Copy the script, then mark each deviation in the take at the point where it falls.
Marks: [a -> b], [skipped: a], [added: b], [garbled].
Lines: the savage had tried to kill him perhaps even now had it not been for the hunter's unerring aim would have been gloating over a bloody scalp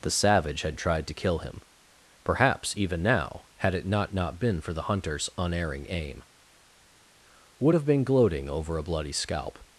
the savage had tried to kill him perhaps even now had it not [added: not] been for the hunter's unerring aim would have been gloating over a bloody scalp